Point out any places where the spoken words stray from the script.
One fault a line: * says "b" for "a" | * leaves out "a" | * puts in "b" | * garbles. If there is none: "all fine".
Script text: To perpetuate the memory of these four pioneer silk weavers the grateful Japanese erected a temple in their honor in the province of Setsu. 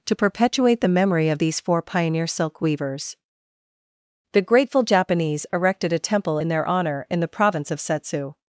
all fine